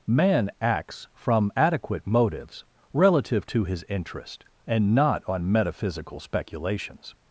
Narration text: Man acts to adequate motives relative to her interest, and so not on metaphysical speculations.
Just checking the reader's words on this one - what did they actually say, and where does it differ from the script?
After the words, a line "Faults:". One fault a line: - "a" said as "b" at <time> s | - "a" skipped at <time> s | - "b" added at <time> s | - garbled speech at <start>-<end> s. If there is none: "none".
Man acts from adequate motives relative to his interest, and not on metaphysical speculations.
Faults:
- "to" said as "from" at 1.1 s
- "her" said as "his" at 3.6 s
- "so" skipped at 4.9 s